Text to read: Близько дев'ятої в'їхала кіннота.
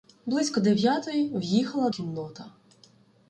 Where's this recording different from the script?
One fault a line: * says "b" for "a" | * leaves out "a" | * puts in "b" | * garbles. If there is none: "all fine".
all fine